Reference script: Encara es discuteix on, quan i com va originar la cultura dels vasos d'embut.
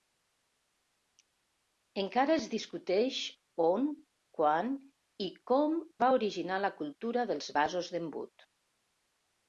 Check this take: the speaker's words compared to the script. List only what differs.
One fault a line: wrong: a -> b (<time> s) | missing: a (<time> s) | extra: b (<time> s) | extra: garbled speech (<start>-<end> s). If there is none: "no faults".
no faults